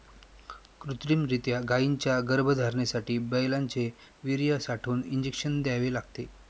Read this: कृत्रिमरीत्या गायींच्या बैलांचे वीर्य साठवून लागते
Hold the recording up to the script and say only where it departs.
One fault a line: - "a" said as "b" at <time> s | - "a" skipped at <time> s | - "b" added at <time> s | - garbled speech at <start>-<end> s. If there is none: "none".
- "गर्भधारणेसाठी" added at 2.3 s
- "इंजेक्शन द्यावे" added at 5.0 s